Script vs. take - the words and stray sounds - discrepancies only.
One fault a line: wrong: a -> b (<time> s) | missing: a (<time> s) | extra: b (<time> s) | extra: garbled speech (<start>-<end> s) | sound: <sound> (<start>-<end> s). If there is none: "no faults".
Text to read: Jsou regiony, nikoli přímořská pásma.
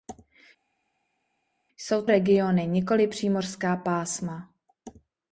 no faults